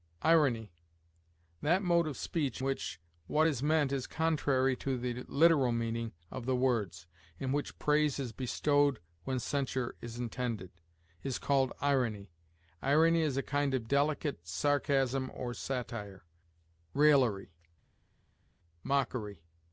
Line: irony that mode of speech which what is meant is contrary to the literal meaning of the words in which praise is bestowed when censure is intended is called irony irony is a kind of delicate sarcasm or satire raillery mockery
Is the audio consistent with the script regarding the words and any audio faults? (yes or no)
yes